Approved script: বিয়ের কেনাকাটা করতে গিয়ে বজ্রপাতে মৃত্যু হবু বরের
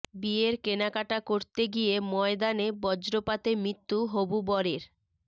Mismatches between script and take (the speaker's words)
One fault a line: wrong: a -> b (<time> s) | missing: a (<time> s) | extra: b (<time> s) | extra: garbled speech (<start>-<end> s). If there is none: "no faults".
extra: ময়দানে (2.1 s)